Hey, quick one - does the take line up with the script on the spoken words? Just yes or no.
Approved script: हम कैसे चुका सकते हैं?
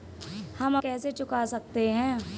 yes